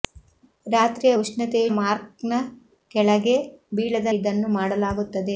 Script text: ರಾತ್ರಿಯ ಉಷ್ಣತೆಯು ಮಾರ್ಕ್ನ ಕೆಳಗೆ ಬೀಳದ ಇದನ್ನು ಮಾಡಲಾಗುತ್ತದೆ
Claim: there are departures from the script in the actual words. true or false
false